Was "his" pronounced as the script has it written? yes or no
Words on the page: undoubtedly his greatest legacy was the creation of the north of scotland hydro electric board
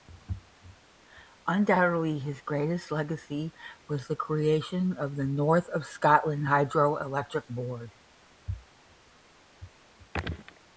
yes